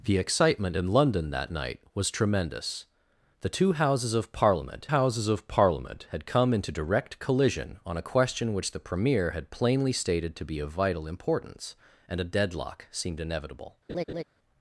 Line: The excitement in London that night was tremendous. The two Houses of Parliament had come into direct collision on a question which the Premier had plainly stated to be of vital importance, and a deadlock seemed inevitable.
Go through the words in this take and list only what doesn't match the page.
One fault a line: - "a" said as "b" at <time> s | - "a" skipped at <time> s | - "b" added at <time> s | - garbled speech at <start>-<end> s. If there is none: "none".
- "Houses of Parliament" added at 4.8 s